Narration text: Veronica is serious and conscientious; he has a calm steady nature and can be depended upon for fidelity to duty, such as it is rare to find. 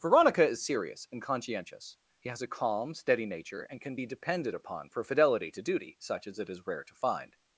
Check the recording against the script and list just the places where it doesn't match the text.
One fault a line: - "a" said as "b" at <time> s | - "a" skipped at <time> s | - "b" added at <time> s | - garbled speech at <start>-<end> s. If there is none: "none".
none